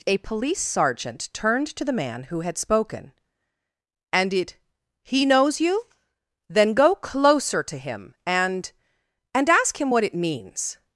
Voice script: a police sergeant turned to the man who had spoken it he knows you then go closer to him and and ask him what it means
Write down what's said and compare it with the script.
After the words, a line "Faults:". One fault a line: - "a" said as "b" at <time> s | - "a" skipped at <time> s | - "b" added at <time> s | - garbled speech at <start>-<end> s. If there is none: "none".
a police sergeant turned to the man who had spoken and it he knows you then go closer to him and and ask him what it means
Faults:
- "and" added at 4.1 s